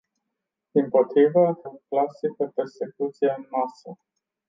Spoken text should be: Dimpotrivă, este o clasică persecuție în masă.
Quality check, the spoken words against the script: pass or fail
fail